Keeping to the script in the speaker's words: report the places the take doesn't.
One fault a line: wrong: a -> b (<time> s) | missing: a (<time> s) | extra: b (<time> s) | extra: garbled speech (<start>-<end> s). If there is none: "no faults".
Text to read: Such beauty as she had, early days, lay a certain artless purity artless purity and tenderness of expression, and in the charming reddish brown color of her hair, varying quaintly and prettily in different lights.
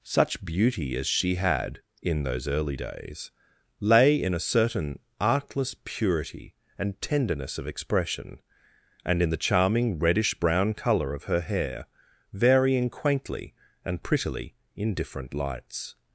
extra: in those (2.0 s)
extra: in (4.2 s)
missing: artless purity (6.5 s)